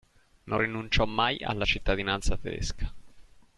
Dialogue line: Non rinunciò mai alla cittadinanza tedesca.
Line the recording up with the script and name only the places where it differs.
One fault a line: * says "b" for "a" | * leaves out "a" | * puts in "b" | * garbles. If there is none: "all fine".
all fine